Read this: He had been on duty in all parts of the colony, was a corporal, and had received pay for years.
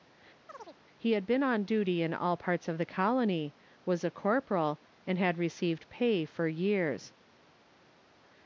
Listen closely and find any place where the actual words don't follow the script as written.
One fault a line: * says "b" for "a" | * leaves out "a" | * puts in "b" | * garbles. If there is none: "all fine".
all fine